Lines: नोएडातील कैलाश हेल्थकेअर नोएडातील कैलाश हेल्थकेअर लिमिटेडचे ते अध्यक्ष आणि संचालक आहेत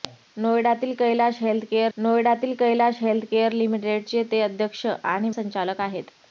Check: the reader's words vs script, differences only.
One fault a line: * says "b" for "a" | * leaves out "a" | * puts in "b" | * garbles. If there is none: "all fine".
all fine